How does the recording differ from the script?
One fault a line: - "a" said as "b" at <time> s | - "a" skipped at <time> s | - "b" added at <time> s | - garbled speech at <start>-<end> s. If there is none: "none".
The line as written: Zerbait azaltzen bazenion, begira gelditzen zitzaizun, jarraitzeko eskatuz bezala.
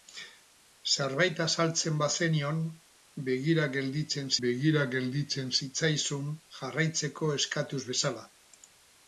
- "begira gelditzen" added at 4.5 s